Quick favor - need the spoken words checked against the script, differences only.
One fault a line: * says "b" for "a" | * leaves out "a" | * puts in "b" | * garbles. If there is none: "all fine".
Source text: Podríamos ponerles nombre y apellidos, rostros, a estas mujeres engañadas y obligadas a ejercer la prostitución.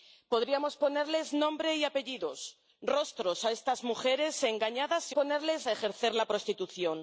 * says "ponerles" for "obligadas"